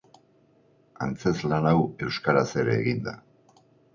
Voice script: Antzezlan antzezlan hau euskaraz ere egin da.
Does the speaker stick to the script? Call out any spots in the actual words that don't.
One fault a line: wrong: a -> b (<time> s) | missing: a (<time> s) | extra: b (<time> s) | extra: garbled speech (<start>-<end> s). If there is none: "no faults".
missing: antzezlan (1.7 s)